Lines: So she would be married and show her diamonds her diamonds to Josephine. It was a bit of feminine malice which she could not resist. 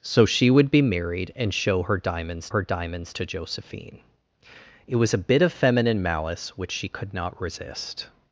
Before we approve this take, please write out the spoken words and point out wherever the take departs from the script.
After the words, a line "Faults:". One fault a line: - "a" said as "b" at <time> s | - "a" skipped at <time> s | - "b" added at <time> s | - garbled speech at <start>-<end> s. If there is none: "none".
So she would be married and show her diamonds her diamonds to Josephine. It was a bit of feminine malice which she could not resist.
Faults:
none